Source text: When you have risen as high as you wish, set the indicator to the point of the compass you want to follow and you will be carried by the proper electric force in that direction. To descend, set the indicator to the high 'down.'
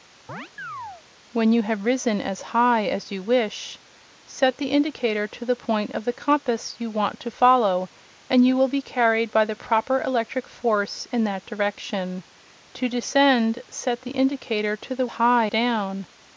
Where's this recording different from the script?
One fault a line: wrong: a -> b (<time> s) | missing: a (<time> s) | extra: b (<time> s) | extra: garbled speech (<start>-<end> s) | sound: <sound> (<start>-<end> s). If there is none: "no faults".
sound: chirp (0.3-1.0 s)